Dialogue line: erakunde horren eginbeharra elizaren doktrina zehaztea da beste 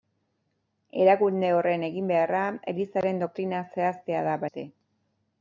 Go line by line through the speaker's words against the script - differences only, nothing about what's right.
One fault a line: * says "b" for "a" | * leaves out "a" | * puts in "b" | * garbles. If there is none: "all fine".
all fine